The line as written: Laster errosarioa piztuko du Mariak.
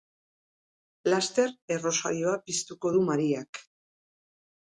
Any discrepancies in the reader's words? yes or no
no